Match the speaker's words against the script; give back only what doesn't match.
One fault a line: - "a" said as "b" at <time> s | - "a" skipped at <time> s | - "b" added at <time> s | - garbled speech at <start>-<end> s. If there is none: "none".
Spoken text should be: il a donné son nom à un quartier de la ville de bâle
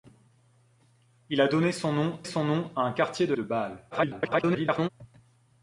- "son nom" added at 2.2 s
- "la ville" skipped at 3.3 s
- garbled speech at 3.9-4.9 s